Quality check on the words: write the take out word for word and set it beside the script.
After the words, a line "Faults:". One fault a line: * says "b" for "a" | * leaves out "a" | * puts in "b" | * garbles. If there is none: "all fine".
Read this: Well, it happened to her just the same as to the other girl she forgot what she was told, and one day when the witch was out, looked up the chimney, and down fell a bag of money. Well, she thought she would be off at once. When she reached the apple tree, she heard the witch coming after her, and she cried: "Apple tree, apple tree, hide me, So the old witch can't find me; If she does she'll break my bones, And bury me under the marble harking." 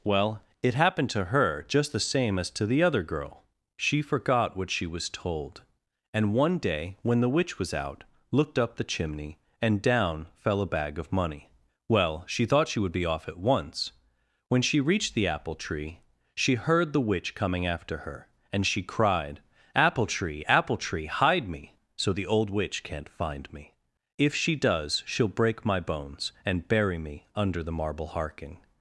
Well, it happened to her just the same as to the other girl she forgot what she was told, and one day when the witch was out, looked up the chimney, and down fell a bag of money. Well, she thought she would be off at once. When she reached the apple tree, she heard the witch coming after her, and she cried: "Apple tree, apple tree, hide me, So the old witch can't find me; If she does she'll break my bones, And bury me under the marble harking."
Faults:
all fine